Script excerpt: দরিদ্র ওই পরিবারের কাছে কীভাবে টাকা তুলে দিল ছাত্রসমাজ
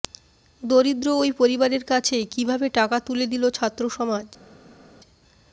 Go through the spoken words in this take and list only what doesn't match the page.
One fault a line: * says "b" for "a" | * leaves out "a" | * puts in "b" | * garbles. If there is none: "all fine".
all fine